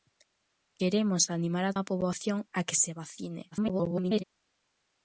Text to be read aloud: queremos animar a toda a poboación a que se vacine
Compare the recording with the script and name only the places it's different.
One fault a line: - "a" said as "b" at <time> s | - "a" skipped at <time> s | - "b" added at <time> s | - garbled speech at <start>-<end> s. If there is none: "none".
- "toda" skipped at 1.7 s
- garbled speech at 3.5-4.2 s